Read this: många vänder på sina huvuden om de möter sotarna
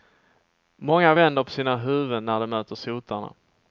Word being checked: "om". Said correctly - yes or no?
no